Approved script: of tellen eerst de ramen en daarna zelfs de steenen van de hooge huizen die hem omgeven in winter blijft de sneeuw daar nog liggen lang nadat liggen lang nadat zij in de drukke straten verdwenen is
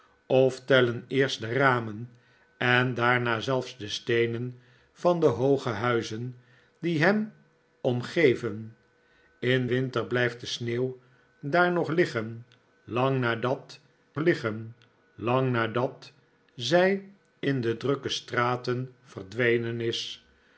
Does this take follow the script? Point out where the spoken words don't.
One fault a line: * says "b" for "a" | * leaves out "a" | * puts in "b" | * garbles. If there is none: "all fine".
all fine